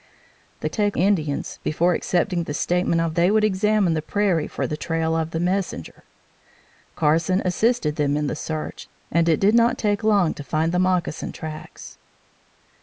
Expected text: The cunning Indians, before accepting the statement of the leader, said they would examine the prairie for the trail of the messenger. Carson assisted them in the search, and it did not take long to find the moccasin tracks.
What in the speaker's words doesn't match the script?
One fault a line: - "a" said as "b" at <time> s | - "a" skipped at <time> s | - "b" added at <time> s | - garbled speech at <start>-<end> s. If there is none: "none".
- "cunning" said as "take" at 0.7 s
- "the leader said" skipped at 3.1 s